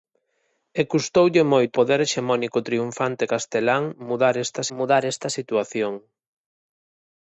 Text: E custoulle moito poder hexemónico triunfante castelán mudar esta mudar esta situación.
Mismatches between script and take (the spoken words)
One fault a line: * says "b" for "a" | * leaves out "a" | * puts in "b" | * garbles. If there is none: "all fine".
all fine